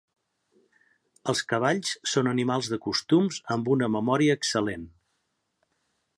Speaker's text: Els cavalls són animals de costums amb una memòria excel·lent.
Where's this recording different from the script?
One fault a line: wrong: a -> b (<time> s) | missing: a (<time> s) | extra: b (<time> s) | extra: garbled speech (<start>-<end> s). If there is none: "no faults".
no faults